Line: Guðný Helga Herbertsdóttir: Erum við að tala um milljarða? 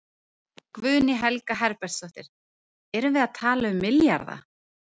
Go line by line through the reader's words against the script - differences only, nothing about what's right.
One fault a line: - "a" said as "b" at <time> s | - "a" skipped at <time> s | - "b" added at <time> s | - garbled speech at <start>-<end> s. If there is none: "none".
none